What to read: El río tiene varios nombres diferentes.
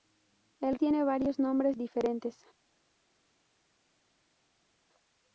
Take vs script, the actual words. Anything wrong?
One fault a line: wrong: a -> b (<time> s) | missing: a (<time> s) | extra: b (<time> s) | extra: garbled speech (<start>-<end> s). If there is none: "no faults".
missing: río (0.8 s)